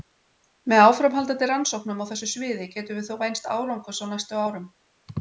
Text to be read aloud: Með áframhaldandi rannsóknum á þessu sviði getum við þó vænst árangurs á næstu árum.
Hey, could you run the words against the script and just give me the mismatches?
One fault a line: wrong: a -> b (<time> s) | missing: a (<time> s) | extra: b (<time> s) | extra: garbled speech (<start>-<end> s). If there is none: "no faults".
no faults